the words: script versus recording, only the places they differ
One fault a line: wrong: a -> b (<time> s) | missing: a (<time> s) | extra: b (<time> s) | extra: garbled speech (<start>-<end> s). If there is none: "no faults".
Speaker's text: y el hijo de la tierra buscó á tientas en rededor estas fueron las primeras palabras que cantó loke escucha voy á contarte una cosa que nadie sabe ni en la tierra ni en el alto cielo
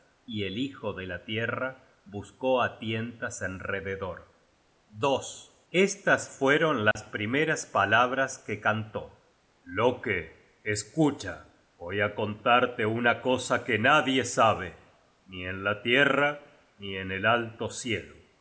no faults